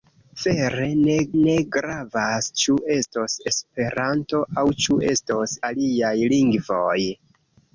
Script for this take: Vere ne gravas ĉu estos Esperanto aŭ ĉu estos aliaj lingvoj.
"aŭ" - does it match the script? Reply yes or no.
yes